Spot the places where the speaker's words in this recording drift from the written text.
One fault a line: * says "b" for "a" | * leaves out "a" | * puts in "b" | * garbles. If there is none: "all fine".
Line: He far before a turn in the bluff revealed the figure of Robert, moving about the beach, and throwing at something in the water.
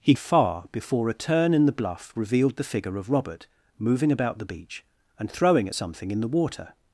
all fine